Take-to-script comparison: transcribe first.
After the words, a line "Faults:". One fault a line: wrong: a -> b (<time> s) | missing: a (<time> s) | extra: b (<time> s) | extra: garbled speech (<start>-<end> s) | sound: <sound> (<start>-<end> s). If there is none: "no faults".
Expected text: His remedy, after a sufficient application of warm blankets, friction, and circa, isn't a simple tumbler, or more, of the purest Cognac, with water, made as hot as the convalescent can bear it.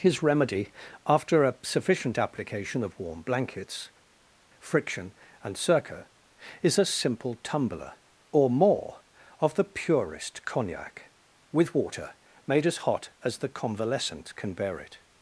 His remedy, after a sufficient application of warm blankets, friction, and circa, is a simple tumbler, or more, of the purest Cognac, with water, made as hot as the convalescent can bear it.
Faults:
wrong: isn't -> is (6.6 s)